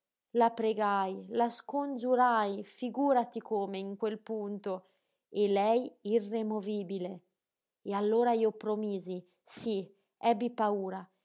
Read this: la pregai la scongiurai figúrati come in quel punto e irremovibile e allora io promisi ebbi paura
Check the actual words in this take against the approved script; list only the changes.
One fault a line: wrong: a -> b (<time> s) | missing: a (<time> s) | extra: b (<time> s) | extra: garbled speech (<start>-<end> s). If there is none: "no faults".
extra: lei (5.5 s)
extra: sí (9.4 s)